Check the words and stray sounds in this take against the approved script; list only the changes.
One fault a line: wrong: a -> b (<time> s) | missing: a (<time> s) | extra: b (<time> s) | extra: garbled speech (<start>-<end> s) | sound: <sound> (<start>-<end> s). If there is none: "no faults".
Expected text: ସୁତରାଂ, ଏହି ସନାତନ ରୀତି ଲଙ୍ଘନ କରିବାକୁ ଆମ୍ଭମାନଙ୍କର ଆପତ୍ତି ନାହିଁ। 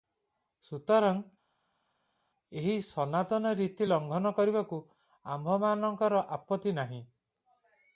no faults